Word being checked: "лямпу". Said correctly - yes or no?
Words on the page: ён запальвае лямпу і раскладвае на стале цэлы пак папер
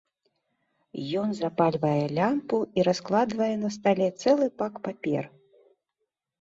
yes